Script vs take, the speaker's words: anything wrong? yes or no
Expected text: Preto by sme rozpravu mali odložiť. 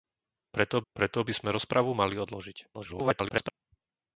yes